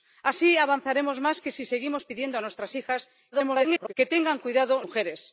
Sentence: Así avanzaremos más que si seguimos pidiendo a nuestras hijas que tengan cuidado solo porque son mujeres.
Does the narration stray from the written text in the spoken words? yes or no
yes